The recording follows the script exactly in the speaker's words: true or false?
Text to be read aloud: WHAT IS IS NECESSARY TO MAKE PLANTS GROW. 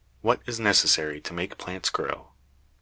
false